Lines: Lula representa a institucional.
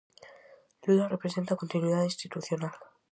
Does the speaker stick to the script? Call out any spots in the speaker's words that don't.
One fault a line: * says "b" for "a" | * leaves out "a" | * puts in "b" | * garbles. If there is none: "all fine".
* puts in "continuidade"